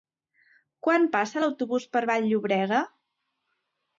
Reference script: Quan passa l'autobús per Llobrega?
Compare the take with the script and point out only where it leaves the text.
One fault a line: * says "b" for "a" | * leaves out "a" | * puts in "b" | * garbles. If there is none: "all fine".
* puts in "Vall"